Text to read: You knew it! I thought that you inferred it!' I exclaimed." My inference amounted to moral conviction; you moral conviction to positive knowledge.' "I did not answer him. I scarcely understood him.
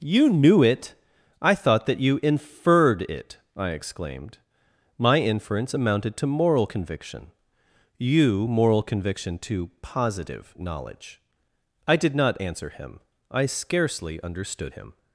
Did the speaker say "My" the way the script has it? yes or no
yes